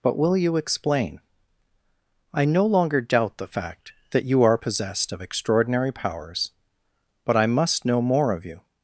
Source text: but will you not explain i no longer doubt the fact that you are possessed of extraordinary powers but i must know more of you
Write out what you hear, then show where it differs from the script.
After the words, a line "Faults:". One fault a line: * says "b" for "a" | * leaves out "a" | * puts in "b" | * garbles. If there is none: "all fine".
but will you explain i no longer doubt the fact that you are possessed of extraordinary powers but i must know more of you
Faults:
* leaves out "not"